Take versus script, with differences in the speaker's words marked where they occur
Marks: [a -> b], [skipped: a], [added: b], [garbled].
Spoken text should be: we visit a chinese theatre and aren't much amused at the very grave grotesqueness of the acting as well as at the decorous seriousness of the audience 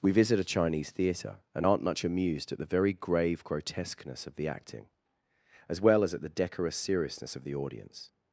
we visit a chinese theatre and aren't much amused at the very grave grotesqueness of the acting as well as at the decorous seriousness of the audience